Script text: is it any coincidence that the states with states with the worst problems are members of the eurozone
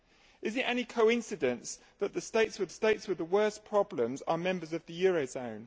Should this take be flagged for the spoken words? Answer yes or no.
no